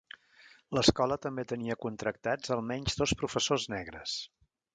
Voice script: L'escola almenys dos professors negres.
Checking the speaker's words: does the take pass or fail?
fail